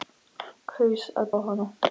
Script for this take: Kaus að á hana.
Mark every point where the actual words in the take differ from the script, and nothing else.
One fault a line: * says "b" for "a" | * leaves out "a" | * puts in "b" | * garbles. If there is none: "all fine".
all fine